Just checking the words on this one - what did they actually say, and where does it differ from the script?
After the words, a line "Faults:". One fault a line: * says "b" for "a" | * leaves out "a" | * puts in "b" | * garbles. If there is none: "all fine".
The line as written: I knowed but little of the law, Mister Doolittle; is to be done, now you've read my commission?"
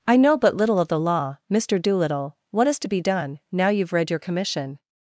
I know but little of the law, Mister Doolittle; what is to be done, now you've read your commission?"
Faults:
* says "know" for "knowed"
* puts in "what"
* says "your" for "my"